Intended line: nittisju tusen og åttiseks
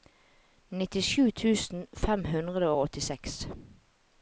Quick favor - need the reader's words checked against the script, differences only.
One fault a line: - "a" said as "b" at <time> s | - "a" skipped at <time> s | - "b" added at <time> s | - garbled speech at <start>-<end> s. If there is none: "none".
- "fem hundre" added at 2.0 s